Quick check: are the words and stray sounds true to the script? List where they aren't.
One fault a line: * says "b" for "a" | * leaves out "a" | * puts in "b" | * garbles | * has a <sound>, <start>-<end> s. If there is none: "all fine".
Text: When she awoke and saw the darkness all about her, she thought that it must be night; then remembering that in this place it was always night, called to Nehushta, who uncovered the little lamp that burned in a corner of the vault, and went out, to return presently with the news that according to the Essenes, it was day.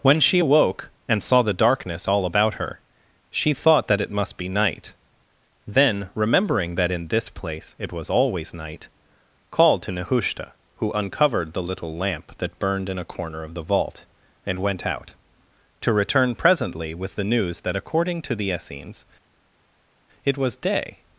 all fine